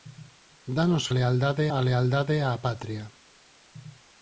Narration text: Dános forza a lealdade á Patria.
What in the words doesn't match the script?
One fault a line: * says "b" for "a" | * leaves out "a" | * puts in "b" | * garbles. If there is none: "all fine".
* says "lealdade" for "forza"